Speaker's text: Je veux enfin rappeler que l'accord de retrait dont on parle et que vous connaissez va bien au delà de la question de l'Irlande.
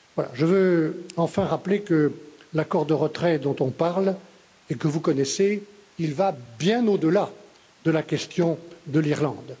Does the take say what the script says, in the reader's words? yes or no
yes